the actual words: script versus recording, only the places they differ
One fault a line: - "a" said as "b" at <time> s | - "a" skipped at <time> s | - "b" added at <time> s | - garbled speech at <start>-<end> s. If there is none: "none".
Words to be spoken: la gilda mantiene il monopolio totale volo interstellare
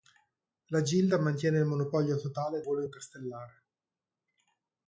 none